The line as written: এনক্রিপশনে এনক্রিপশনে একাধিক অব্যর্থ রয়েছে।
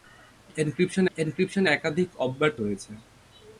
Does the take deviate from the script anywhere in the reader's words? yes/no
no